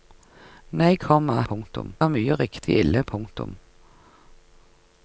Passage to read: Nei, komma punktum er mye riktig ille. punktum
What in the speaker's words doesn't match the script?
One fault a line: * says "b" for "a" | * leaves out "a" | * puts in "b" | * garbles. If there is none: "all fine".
all fine